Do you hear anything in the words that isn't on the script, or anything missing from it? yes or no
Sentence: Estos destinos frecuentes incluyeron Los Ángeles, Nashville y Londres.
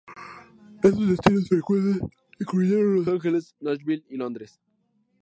no